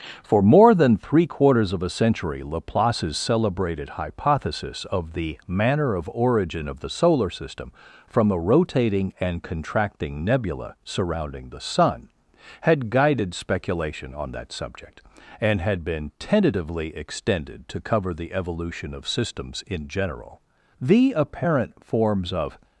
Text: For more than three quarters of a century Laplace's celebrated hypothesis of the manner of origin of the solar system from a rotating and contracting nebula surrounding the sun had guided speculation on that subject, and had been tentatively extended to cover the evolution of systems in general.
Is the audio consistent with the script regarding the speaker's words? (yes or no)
no